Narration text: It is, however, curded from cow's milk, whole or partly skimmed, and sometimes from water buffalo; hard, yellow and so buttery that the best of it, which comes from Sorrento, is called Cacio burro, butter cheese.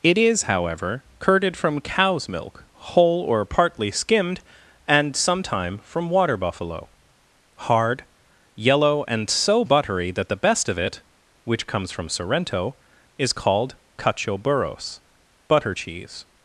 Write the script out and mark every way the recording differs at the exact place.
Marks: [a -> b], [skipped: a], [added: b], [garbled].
It is, however, curded from cow's milk, whole or partly skimmed, and [sometimes -> sometime] from water buffalo; hard, yellow and so buttery that the best of it, which comes from Sorrento, is called Cacio [burro, -> burros] butter cheese.